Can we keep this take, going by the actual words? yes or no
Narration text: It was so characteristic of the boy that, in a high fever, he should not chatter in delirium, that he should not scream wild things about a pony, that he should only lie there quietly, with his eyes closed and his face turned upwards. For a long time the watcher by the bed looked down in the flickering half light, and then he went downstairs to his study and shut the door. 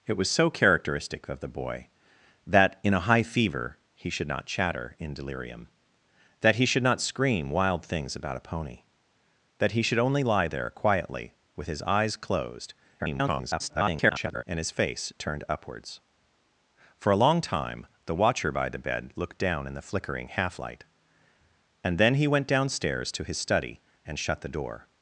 no